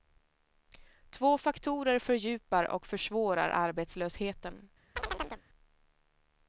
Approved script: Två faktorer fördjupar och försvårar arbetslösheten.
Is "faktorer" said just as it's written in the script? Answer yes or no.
yes